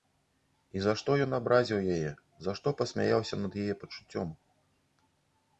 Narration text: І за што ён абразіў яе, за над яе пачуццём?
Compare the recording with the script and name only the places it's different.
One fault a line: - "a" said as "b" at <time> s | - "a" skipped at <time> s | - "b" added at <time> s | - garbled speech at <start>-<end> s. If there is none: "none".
- "што пасмяяўся" added at 2.6 s